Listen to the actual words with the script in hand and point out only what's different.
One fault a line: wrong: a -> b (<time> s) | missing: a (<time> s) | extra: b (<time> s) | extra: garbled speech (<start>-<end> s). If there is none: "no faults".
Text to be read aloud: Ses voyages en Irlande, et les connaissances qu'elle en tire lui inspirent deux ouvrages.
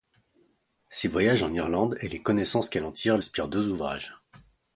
missing: lui (3.2 s)